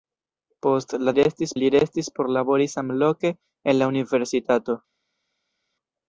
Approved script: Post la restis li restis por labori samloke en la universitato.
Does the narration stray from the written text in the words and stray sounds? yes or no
no